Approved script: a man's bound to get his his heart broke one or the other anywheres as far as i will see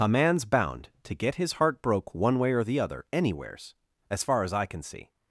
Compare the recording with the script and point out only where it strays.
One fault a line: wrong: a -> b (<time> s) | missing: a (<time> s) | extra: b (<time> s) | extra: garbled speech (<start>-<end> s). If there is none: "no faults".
missing: his (1.5 s)
extra: way (2.4 s)
wrong: will -> can (4.7 s)